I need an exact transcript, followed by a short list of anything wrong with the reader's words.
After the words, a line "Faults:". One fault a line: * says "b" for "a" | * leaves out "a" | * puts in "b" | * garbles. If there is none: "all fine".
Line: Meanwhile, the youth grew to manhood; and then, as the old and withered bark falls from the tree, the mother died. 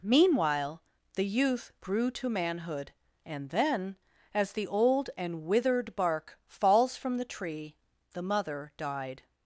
Meanwhile, the youth grew to manhood; and then, as the old and withered bark falls from the tree, the mother died.
Faults:
all fine